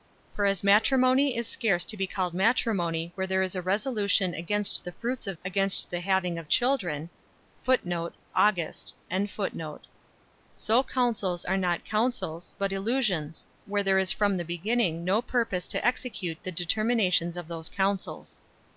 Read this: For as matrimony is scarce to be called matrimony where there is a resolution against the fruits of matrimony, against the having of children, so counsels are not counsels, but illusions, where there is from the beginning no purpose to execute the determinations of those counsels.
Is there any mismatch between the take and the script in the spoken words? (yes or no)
yes